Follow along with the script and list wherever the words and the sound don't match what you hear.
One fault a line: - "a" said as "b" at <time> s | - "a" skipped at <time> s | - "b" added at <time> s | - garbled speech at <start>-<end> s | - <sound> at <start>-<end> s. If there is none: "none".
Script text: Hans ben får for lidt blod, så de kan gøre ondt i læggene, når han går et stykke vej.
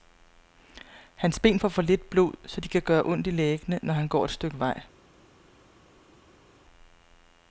none